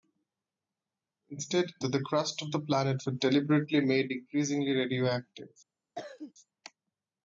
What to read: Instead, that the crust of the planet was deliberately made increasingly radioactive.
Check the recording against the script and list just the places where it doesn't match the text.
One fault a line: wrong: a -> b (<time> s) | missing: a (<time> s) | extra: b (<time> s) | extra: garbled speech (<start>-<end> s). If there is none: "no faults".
no faults